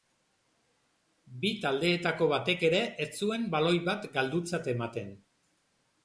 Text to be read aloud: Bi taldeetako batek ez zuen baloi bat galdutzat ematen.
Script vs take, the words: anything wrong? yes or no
yes